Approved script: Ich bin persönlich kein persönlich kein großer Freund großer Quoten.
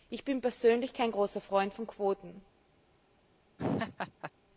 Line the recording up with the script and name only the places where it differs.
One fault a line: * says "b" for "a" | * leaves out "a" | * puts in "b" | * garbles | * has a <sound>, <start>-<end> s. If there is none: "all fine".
* leaves out "persönlich kein"
* says "von" for "großer"
* has a laugh, 3.6-4.3 s